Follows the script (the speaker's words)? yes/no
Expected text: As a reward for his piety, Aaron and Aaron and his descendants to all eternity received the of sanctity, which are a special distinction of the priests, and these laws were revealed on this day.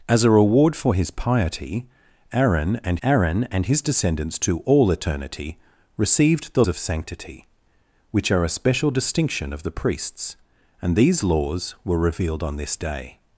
yes